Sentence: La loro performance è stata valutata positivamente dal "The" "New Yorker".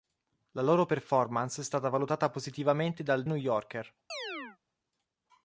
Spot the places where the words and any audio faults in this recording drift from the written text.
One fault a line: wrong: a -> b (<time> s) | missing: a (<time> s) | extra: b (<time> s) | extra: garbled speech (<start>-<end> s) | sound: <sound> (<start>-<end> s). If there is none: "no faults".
missing: The (3.2 s)
sound: chirp (4.1-4.6 s)